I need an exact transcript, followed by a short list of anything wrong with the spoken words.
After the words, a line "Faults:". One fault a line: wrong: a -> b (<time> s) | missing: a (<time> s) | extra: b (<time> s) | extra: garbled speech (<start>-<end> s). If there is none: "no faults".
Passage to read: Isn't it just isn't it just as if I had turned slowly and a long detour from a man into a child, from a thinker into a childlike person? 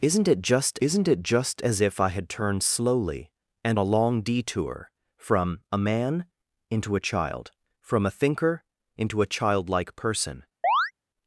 Isn't it just isn't it just as if I had turned slowly and a long detour from a man into a child, from a thinker into a childlike person?
Faults:
no faults